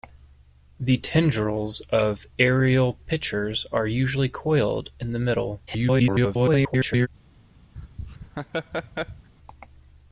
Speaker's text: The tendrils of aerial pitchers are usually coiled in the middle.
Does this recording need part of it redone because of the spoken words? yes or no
yes